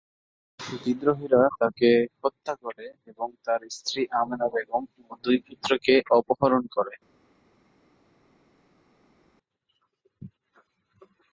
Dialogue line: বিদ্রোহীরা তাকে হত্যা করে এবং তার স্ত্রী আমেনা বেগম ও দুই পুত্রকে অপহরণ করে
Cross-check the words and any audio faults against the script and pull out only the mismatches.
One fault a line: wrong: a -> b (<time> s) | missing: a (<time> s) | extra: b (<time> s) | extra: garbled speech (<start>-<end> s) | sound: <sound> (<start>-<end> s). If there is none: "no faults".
no faults